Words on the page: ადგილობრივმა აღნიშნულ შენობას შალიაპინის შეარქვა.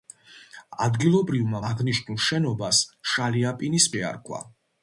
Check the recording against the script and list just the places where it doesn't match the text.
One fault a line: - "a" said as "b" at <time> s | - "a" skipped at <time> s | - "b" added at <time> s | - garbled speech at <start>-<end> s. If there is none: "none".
none